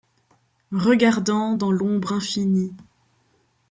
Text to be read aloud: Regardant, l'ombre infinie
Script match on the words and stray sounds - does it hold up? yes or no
no